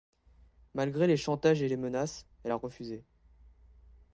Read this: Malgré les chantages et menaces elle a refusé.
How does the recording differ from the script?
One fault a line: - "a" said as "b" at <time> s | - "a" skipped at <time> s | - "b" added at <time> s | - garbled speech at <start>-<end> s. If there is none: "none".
- "les" added at 1.7 s